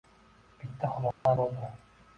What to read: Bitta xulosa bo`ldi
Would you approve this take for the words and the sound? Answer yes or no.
no